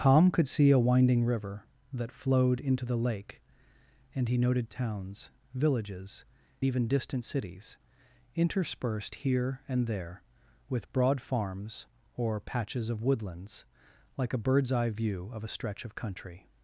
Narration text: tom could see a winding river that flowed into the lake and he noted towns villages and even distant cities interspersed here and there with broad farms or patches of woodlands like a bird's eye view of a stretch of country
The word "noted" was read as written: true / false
true